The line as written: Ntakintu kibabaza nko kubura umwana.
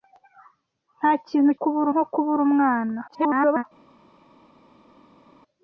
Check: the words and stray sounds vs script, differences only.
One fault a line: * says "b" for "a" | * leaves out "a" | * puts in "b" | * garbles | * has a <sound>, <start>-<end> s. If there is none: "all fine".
* says "kubura" for "kibabaza"
* garbles